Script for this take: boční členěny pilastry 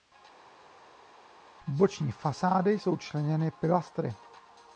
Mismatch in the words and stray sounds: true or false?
true